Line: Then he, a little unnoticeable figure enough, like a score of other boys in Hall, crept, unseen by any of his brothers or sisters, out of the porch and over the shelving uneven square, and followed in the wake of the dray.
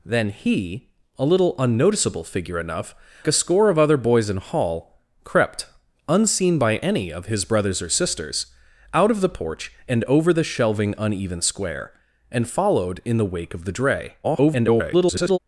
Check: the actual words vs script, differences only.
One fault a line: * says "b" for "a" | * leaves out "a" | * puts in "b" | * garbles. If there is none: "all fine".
* leaves out "like"
* garbles